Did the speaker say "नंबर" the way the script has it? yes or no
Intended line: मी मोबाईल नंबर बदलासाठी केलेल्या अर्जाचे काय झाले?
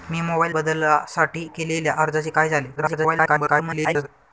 no